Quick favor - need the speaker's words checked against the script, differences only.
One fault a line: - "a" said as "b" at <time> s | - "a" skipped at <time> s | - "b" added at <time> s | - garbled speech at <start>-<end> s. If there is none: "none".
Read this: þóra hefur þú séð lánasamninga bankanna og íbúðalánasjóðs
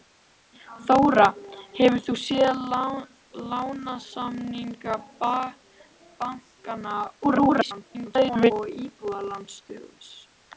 - garbled speech at 7.2-8.5 s